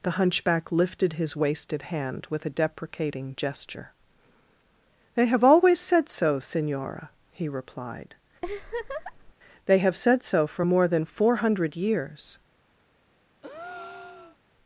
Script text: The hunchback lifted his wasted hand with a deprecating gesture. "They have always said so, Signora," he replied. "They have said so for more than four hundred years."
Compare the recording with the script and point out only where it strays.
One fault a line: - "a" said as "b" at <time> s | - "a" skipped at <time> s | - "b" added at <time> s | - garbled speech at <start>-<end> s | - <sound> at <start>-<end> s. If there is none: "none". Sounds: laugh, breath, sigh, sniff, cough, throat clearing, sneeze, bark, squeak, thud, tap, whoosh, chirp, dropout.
- laugh at 8.4-9.3 s
- breath at 13.4-14.4 s